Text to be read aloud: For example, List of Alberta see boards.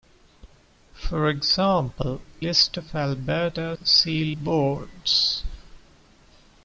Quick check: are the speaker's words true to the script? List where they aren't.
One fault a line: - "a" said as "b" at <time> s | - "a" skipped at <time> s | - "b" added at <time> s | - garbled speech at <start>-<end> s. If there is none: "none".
none